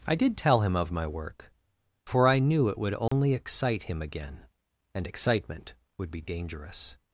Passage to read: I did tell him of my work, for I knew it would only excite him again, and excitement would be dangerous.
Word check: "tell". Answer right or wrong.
right